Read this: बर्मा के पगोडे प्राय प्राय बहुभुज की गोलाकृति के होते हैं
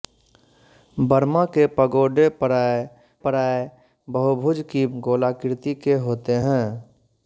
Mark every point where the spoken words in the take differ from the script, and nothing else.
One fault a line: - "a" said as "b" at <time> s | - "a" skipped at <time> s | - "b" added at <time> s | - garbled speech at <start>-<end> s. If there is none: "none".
none